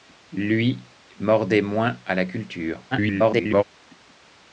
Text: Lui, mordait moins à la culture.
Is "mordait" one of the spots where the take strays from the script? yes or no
no